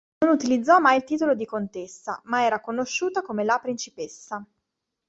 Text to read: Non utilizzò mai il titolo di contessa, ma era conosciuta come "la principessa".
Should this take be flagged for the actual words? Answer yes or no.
no